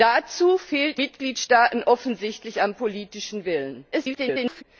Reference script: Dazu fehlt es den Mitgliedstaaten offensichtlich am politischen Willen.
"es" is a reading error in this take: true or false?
true